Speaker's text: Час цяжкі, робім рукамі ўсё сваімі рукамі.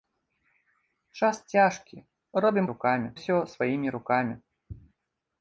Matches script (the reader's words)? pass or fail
pass